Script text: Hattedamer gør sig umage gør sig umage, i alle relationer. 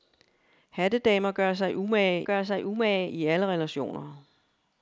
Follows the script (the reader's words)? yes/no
yes